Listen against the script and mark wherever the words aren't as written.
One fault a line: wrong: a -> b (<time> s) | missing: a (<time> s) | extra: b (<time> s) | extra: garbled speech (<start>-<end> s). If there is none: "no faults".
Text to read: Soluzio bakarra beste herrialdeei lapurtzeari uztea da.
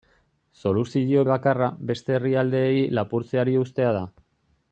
no faults